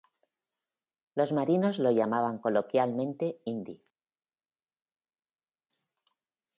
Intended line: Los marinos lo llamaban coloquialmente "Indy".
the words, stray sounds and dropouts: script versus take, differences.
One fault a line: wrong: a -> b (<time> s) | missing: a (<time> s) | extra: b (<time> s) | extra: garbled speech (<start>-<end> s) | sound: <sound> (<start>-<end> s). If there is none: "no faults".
no faults